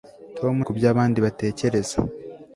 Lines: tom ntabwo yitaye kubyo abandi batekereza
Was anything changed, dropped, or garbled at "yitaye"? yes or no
yes